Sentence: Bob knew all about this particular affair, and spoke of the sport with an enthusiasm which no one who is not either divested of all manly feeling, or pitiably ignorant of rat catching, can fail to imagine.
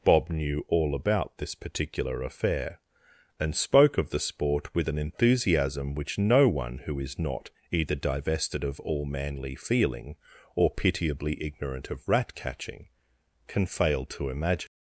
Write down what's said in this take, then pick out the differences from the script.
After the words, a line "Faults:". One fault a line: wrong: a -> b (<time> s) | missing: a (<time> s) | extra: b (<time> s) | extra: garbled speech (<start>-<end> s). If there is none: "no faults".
Bob knew all about this particular affair, and spoke of the sport with an enthusiasm which no one who is not either divested of all manly feeling, or pitiably ignorant of rat catching, can fail to imagine.
Faults:
no faults